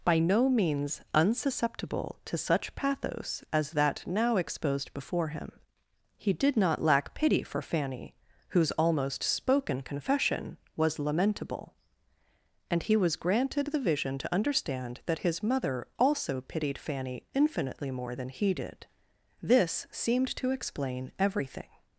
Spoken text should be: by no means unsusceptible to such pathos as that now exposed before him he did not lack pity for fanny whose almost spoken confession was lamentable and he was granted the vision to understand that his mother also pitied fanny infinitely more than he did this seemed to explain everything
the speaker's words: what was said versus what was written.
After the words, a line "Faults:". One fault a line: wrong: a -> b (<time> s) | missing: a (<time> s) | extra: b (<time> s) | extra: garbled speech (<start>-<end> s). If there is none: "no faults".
by no means unsusceptible to such pathos as that now exposed before him he did not lack pity for fanny whose almost spoken confession was lamentable and he was granted the vision to understand that his mother also pitied fanny infinitely more than he did this seemed to explain everything
Faults:
no faults